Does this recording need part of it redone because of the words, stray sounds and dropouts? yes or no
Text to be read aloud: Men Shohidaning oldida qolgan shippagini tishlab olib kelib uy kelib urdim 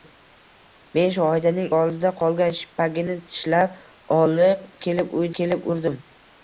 no